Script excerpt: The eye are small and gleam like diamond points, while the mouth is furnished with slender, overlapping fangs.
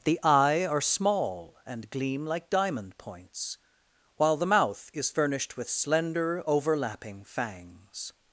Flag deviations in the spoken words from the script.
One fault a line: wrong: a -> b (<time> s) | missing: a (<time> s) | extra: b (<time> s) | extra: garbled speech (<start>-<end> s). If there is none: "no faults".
no faults